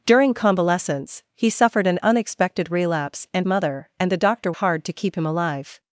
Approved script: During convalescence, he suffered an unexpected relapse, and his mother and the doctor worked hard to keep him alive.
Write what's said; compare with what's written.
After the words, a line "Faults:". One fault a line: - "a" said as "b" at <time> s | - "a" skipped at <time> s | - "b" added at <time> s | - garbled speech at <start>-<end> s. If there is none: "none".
During convalescence, he suffered an unexpected relapse, and mother and the doctor hard to keep him alive.
Faults:
- "his" skipped at 3.5 s
- "worked" skipped at 4.5 s